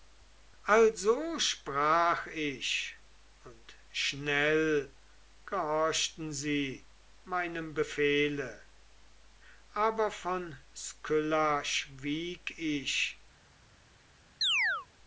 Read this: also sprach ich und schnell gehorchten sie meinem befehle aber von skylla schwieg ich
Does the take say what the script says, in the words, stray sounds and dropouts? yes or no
no